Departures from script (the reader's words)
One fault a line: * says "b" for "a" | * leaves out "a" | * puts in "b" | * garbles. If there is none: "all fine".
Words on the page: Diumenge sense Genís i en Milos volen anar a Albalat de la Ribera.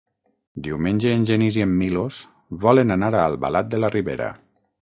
* says "en" for "sense"